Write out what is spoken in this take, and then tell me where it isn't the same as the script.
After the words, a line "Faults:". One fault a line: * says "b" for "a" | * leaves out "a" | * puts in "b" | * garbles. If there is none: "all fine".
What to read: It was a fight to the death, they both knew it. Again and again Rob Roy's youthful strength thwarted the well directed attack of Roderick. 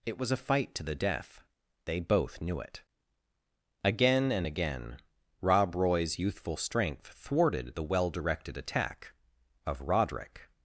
It was a fight to the death, they both knew it. Again and again Rob Roy's youthful strength thwarted the well directed attack of Roderick.
Faults:
all fine